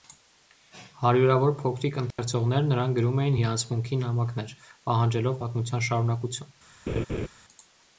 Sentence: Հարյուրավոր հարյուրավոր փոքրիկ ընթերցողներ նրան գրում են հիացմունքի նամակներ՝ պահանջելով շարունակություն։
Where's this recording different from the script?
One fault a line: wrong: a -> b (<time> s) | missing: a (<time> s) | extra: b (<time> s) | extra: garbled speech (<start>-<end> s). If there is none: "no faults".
missing: հարյուրավոր (1.5 s)
wrong: են -> էին (3.3 s)
extra: պատմության (5.4 s)